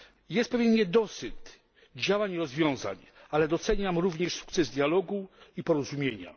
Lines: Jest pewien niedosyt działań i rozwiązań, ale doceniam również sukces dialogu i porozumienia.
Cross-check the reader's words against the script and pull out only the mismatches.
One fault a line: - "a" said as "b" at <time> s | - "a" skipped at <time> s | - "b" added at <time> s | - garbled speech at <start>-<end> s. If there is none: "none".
none